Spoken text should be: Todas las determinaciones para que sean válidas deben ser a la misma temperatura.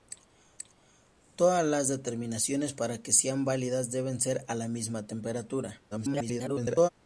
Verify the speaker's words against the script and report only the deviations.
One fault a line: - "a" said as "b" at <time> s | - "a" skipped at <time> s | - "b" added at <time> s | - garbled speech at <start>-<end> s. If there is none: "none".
- garbled speech at 5.9-6.9 s